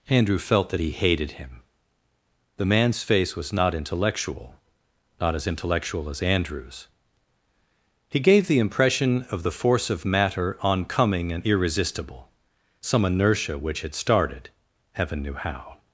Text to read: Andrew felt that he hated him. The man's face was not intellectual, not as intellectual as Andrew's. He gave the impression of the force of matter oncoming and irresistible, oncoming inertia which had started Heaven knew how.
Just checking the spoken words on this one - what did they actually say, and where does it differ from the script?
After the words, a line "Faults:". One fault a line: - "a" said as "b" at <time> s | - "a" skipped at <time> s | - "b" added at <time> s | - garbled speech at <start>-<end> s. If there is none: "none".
Andrew felt that he hated him. The man's face was not intellectual, not as intellectual as Andrew's. He gave the impression of the force of matter oncoming and irresistible, some inertia which had started Heaven knew how.
Faults:
- "oncoming" said as "some" at 12.8 s